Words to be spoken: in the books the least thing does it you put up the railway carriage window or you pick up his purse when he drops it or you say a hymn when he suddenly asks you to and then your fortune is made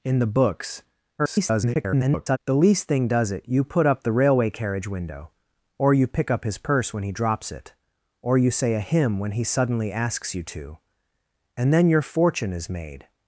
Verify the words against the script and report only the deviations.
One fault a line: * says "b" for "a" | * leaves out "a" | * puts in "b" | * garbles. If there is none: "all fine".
* garbles